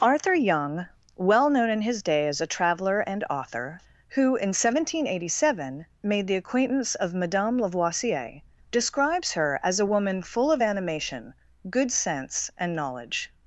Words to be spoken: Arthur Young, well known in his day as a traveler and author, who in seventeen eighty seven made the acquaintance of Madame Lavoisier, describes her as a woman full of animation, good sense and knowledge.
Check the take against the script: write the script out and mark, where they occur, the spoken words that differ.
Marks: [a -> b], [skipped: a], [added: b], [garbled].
Arthur Young, well known in his day as a traveler and author, who in seventeen eighty seven made the acquaintance of Madame Lavoisier, describes her as a woman full of animation, good sense and knowledge.